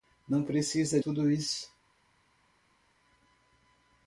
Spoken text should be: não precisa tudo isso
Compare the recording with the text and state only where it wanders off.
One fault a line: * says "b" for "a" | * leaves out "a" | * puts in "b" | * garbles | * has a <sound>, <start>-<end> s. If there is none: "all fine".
all fine